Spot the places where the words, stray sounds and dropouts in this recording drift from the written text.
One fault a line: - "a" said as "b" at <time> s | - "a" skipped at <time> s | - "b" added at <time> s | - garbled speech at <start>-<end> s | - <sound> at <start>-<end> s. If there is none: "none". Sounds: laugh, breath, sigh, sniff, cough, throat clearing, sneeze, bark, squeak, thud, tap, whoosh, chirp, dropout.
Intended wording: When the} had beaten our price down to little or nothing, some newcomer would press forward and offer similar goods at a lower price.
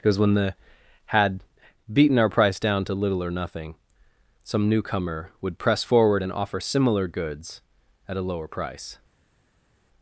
- "because" added at 0.0 s